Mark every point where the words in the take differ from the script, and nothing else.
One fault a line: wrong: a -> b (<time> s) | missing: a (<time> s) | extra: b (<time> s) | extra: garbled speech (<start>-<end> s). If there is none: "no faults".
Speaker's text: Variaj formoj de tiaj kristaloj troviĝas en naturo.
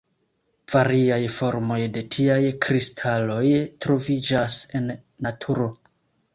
no faults